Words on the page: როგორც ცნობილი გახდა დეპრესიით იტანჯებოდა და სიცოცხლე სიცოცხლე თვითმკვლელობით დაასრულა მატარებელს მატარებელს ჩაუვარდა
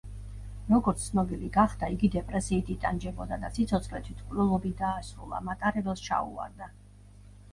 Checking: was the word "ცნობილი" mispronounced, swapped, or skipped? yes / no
no